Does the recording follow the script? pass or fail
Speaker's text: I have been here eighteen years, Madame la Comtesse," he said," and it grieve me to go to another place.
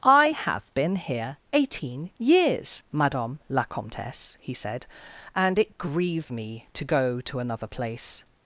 pass